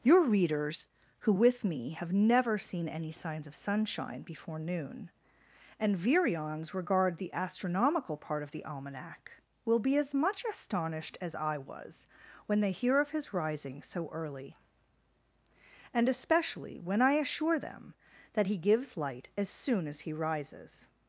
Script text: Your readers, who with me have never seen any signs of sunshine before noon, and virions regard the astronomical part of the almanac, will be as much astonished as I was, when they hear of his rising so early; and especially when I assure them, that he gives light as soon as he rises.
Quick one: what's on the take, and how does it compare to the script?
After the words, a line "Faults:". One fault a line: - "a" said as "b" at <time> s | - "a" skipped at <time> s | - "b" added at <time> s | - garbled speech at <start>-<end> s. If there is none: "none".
Your readers, who with me have never seen any signs of sunshine before noon, and virions regard the astronomical part of the almanac, will be as much astonished as I was, when they hear of his rising so early; and especially when I assure them, that he gives light as soon as he rises.
Faults:
none